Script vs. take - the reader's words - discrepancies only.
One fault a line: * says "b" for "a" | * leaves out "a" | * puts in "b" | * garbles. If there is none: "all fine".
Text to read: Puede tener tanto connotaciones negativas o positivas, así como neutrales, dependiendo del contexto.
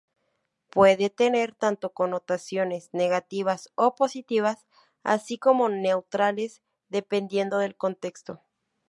all fine